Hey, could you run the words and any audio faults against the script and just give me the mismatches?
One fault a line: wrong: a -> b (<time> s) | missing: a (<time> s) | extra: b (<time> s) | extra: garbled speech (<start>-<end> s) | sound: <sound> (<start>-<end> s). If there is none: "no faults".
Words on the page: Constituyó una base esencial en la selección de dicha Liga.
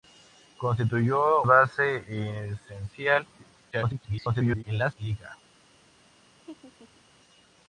missing: una (1.4 s)
extra: garbled speech (3.7-4.6 s)
missing: selección de dicha (4.9 s)
sound: laugh (6.4-7.0 s)